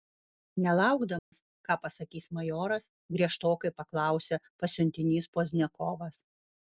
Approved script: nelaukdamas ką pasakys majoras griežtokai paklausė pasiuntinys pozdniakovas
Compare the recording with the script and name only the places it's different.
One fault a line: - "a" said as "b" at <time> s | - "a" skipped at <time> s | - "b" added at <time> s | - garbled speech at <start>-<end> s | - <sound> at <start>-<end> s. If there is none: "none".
- dropout at 1.2-1.3 s